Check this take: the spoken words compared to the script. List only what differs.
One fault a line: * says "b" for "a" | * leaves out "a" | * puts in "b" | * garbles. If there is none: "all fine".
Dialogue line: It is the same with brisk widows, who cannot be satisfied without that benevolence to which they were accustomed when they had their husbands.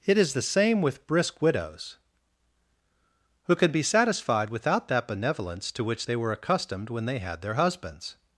* says "can" for "cannot"